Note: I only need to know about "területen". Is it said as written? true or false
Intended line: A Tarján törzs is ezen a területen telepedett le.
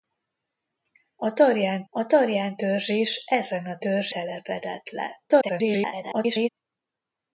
false